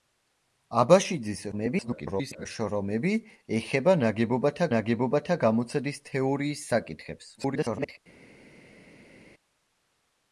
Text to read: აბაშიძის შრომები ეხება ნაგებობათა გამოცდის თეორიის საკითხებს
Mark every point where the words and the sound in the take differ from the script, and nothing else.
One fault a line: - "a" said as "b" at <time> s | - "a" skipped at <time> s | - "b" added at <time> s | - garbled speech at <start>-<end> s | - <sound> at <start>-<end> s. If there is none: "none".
- garbled speech at 1.5-2.5 s
- "ნაგებობათა" added at 4.7 s
- garbled speech at 7.4-8.0 s